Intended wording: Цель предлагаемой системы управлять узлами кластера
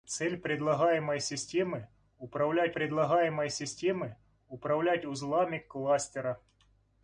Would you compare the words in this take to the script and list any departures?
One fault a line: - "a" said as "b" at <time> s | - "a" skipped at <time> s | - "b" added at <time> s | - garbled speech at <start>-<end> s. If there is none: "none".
- "предлагаемой системы управлять" added at 2.7 s